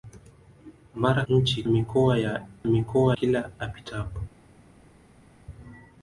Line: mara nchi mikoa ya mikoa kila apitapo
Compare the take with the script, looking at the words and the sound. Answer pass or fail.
pass